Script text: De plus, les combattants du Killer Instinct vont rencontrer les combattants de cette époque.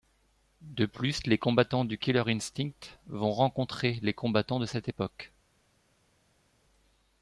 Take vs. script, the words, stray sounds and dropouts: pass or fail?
pass